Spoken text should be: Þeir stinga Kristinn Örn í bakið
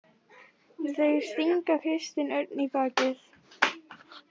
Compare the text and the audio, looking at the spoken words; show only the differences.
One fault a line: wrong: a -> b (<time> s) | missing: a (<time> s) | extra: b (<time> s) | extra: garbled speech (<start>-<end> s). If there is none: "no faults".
no faults